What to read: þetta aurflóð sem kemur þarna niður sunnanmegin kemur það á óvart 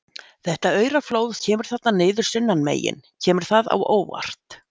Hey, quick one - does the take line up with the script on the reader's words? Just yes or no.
no